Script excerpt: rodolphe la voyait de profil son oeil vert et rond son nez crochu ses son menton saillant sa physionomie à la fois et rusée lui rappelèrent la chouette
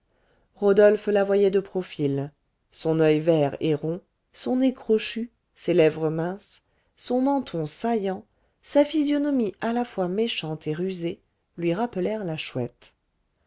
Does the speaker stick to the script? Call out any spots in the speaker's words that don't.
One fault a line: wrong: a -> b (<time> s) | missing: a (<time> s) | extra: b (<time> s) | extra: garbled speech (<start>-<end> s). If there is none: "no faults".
extra: lèvres minces (5.8 s)
extra: méchante (10.1 s)